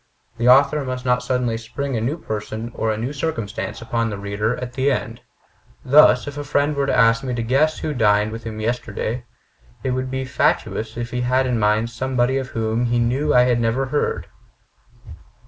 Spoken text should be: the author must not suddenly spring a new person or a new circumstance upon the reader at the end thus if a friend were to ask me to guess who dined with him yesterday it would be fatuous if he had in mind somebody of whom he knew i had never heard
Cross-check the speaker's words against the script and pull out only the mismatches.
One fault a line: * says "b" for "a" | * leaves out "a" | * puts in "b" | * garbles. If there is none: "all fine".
all fine